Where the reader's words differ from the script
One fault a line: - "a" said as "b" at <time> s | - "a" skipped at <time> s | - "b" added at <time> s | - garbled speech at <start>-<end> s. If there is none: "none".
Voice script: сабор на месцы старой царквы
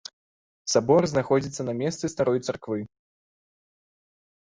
- "знаходзіцца" added at 1.1 s